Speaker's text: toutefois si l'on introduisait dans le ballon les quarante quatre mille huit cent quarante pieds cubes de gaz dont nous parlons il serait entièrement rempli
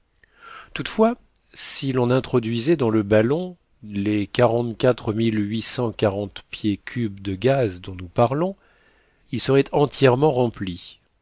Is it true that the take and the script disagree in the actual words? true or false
false